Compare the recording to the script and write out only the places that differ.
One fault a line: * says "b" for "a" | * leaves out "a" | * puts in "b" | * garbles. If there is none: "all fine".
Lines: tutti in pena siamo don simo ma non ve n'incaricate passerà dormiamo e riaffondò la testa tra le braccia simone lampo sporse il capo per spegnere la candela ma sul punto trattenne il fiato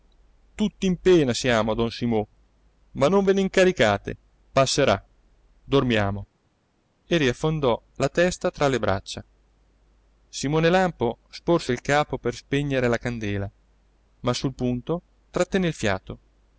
all fine